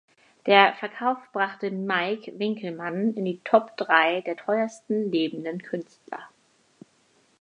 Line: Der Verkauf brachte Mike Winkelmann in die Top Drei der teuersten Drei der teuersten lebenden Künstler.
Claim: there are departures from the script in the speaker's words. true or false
true